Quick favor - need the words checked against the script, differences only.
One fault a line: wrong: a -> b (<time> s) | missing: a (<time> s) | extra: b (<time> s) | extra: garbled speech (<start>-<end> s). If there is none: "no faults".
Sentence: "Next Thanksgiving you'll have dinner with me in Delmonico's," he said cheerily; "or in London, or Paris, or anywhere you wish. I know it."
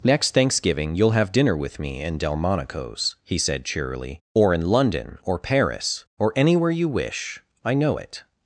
no faults